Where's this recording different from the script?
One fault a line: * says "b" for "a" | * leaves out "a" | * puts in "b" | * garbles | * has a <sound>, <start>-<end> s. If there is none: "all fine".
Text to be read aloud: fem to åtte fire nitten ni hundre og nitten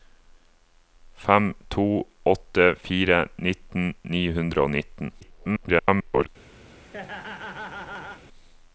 * garbles
* has a laugh, 6.7-8.2 s